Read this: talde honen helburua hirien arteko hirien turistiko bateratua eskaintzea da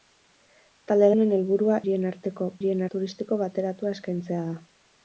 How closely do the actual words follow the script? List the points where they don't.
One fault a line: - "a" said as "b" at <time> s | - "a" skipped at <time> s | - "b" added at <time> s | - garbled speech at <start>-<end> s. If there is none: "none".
none